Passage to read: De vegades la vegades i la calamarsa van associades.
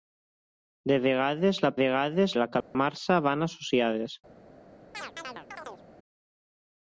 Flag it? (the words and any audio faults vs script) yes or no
yes